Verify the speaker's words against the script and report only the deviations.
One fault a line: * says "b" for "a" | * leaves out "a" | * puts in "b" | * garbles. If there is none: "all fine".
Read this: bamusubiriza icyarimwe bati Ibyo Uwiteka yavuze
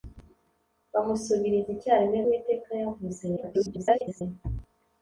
* leaves out "bati Ibyo"
* garbles